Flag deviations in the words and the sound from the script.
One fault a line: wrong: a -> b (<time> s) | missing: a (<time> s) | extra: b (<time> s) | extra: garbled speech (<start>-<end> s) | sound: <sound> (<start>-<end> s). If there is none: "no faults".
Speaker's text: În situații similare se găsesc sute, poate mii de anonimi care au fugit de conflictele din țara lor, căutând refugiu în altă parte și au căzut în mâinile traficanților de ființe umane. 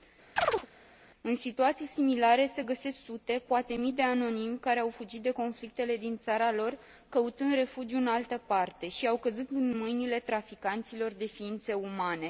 sound: chirp (0.4-0.7 s)